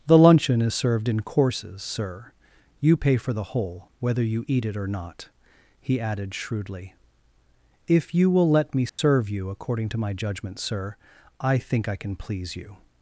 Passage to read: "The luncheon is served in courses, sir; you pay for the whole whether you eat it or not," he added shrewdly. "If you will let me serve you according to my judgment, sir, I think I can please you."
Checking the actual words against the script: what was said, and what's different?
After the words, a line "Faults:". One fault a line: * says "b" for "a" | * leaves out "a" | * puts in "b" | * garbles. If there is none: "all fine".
"The luncheon is served in courses, sir; you pay for the whole whether you eat it or not," he added shrewdly. "If you will let me serve you according to my judgment, sir, I think I can please you."
Faults:
all fine